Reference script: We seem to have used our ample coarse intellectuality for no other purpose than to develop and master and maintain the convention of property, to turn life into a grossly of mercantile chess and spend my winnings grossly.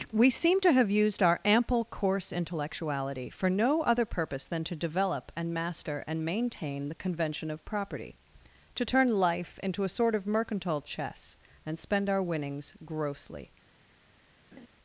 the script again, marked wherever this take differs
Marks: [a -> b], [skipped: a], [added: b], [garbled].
We seem to have used our ample coarse intellectuality for no other purpose than to develop and master and maintain the convention of property, to turn life into a [grossly -> sort] of mercantile chess and spend [my -> our] winnings grossly.